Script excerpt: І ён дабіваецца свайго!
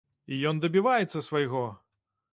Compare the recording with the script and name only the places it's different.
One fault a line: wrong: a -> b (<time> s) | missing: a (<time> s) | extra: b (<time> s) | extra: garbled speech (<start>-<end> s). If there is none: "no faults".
no faults